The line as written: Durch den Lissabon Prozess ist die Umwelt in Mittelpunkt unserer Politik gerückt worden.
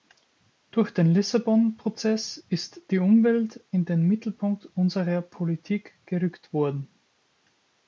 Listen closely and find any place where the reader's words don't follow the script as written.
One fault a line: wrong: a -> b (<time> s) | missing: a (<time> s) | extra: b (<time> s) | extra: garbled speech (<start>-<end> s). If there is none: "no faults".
extra: den (3.8 s)